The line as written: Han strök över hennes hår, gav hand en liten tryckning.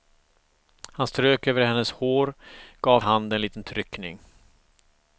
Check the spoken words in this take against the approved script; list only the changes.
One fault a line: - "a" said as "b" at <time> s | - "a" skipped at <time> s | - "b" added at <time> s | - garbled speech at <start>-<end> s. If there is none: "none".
none